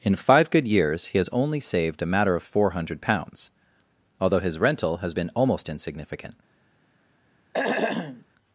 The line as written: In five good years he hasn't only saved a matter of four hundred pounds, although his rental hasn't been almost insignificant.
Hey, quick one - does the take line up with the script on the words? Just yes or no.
no